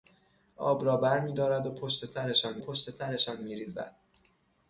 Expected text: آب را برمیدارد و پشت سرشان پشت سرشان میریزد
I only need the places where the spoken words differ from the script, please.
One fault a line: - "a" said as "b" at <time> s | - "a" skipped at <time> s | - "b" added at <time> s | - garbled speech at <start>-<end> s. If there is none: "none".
none